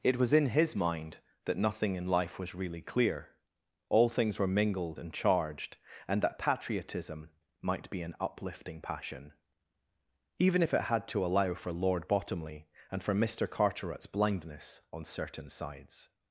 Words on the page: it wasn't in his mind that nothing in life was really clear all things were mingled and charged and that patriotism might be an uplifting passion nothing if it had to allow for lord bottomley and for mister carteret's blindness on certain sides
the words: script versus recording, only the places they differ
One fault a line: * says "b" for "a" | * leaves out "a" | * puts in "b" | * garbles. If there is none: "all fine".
* says "was" for "wasn't"
* says "even" for "nothing"